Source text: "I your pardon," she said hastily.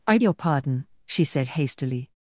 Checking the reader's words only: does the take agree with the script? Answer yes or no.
yes